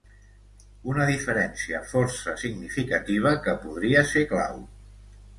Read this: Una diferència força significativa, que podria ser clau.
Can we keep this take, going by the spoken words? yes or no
yes